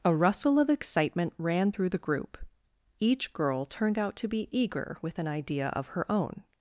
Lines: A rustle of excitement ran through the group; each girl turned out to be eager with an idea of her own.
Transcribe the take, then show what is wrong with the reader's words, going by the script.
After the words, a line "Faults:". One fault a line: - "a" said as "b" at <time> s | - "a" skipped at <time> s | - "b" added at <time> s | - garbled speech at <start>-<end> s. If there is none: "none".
A rustle of excitement ran through the group; each girl turned out to be eager with an idea of her own.
Faults:
none